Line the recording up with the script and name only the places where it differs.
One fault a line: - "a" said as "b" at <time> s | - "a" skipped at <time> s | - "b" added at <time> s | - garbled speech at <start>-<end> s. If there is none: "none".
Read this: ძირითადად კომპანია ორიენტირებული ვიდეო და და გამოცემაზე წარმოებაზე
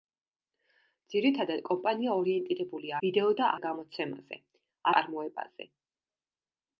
none